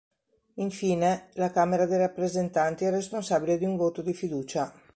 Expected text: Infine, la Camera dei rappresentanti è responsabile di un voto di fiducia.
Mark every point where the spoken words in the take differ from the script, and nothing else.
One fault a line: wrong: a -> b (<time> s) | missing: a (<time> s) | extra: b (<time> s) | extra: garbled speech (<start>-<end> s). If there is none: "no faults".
no faults